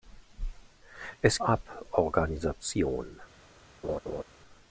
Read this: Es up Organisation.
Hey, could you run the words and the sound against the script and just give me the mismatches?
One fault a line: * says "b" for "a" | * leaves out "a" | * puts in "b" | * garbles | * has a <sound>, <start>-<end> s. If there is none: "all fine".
* has a laugh, 3.8-4.2 s